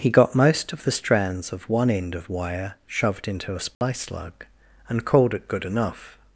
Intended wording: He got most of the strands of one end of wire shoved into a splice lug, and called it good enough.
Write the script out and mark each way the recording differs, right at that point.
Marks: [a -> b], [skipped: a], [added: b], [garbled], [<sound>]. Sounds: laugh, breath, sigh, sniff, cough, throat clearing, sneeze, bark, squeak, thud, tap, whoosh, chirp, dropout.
He got most of the strands of one end of wire shoved into a splice [dropout] lug, and called it good enough.